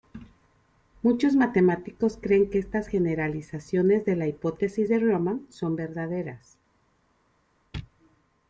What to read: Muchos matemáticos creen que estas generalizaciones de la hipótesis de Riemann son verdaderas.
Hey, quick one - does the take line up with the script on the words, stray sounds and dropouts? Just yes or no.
yes